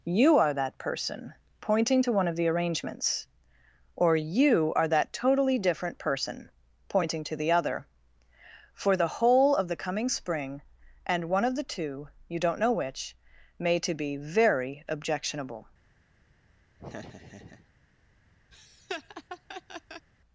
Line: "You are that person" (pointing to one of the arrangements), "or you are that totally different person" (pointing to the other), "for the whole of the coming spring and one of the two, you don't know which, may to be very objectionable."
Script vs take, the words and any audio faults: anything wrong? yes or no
yes